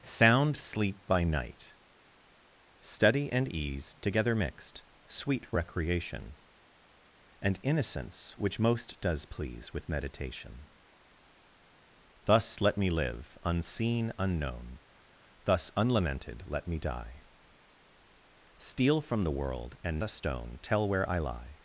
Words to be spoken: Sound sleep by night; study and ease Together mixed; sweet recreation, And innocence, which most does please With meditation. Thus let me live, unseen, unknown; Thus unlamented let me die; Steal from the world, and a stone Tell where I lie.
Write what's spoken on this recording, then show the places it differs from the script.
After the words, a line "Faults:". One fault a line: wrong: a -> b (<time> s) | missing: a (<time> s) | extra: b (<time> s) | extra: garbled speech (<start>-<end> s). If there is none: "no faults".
Sound sleep by night; study and ease Together mixed; sweet recreation, And innocence, which most does please With meditation. Thus let me live, unseen, unknown; Thus unlamented let me die; Steal from the world, and a stone Tell where I lie.
Faults:
no faults